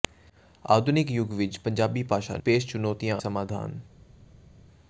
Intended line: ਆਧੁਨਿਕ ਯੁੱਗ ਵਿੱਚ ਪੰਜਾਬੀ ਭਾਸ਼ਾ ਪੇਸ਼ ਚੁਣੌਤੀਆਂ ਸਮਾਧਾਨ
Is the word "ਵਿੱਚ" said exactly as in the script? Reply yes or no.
yes